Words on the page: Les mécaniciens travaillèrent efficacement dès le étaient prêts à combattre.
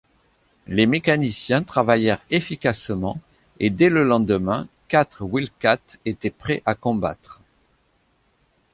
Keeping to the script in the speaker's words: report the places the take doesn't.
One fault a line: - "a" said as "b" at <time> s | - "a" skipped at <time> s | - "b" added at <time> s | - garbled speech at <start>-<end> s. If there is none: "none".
- "et" added at 3.6 s
- "lendemain quatre Wildcat" added at 4.0 s